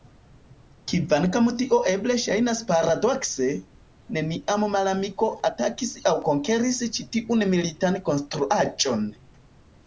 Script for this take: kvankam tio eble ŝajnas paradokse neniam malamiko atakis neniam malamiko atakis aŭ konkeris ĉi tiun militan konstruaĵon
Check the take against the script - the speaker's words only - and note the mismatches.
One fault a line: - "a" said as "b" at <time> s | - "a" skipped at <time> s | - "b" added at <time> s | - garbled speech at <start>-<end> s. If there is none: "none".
- "neniam malamiko atakis" skipped at 6.0 s